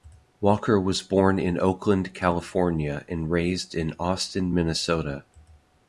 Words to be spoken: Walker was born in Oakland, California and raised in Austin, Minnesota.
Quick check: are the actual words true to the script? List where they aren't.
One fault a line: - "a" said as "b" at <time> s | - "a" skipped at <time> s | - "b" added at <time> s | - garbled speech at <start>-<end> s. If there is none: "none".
none